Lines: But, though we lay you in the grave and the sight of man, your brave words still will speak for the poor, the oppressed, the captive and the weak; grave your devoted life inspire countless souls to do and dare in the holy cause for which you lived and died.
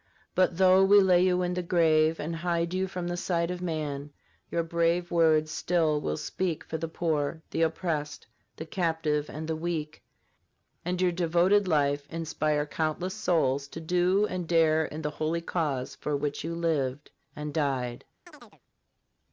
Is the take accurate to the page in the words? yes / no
no